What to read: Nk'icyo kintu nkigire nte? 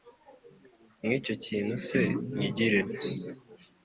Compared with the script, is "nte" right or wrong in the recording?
right